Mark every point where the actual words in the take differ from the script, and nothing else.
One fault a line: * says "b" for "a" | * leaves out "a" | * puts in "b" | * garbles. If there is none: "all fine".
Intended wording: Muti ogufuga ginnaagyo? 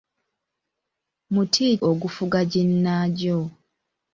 all fine